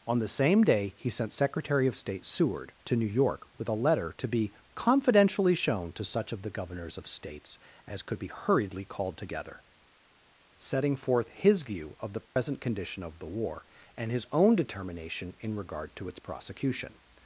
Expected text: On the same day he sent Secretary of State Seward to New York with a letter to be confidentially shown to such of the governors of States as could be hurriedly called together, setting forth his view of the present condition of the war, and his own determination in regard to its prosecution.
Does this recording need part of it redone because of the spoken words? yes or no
no